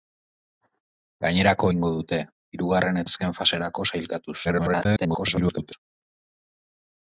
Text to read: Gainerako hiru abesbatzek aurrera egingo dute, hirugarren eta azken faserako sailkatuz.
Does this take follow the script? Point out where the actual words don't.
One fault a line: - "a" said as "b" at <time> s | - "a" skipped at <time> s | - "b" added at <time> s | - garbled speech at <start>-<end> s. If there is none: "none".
- "hiru abesbatzek aurrera" skipped at 1.7 s
- "eta" skipped at 3.0 s
- garbled speech at 4.4-5.7 s